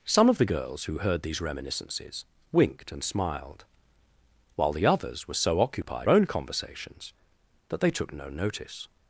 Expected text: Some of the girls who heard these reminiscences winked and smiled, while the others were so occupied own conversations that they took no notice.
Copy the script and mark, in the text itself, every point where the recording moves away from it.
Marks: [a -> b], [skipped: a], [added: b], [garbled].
Some of the girls who heard these reminiscences winked and smiled, while the others were so occupied own conversations that they took no notice.